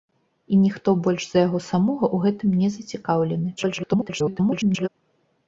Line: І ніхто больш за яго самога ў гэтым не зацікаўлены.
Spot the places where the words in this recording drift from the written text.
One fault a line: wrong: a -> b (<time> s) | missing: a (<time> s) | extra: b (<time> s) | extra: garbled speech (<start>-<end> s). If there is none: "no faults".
extra: garbled speech (3.6-4.9 s)